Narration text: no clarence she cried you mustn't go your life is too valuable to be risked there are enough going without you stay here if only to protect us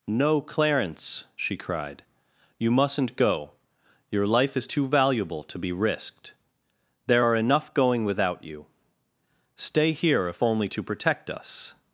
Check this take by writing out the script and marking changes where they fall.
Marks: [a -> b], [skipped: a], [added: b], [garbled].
no clarence she cried you mustn't go your life is too valuable to be risked there are enough going without you stay here if only to protect us